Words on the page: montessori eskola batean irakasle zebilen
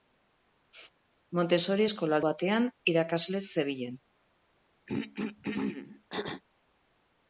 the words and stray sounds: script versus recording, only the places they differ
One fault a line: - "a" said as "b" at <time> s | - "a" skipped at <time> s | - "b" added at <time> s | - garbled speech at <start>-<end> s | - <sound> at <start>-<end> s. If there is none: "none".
- throat clearing at 4.9-6.4 s